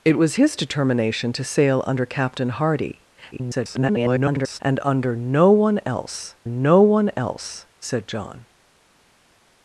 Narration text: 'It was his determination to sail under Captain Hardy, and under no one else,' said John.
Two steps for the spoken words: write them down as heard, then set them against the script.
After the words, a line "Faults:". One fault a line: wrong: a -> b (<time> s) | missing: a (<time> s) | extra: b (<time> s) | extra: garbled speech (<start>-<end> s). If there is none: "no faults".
'It was his determination to sail under Captain Hardy, [garbled] and under no one else no one else,' said John.
Faults:
extra: garbled speech (3.3-4.6 s)
extra: no one else (6.5 s)